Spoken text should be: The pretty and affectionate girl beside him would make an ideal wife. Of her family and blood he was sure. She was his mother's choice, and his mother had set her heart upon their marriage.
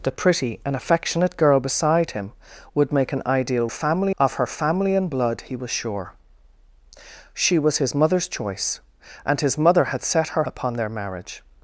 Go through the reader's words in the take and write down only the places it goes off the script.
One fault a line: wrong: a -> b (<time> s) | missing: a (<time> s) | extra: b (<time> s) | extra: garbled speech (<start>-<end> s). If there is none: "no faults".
wrong: wife -> family (3.7 s)
missing: heart (10.4 s)